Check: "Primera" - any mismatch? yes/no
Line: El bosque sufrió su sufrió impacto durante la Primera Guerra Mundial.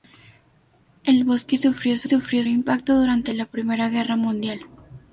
no